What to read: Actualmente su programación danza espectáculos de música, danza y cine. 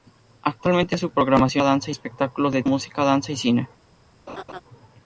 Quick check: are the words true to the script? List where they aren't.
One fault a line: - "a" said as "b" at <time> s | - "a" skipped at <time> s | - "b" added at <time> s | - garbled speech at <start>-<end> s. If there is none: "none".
none